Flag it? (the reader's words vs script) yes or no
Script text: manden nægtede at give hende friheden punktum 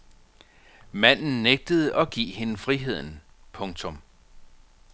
no